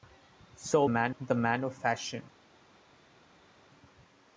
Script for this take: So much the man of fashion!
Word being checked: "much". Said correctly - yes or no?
no